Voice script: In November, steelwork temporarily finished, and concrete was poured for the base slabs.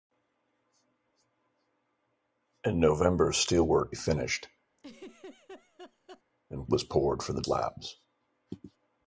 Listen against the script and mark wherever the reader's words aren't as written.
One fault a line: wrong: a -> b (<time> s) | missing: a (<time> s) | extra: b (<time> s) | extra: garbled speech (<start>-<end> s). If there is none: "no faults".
missing: temporarily (3.9 s)
missing: concrete (6.7 s)
missing: base (7.4 s)